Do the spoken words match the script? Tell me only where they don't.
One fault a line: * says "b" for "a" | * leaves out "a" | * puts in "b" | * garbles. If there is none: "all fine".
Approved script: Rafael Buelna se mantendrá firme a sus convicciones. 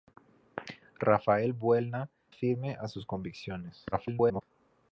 * leaves out "se mantendrá"
* garbles